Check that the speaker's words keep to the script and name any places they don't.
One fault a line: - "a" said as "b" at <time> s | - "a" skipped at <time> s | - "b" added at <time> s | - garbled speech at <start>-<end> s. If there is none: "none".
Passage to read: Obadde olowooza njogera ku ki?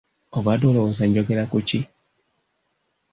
none